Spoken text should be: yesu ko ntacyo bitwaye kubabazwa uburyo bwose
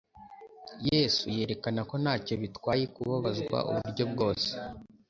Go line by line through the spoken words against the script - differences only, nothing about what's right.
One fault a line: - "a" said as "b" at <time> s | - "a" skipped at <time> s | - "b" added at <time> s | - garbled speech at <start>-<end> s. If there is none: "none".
- "yerekana" added at 1.4 s